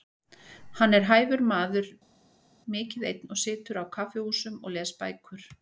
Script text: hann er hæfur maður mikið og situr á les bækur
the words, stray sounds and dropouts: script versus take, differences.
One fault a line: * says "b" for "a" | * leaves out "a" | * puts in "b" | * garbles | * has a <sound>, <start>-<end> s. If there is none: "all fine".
* puts in "einn"
* puts in "kaffihúsum og"